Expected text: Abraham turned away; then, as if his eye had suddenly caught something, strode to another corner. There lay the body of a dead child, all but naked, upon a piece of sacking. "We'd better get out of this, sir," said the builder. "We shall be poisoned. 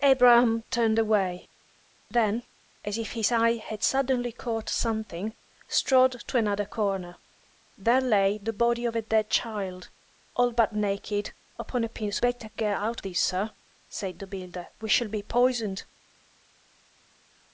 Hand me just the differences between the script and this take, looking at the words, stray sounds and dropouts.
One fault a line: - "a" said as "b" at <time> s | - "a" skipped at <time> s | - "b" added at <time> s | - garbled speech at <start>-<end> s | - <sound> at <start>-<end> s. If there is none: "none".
- "of sacking We'd" skipped at 12.2 s
- "of" skipped at 13.0 s